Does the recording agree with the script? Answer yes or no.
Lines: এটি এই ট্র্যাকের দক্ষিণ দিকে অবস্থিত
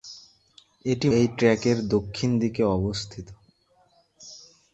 yes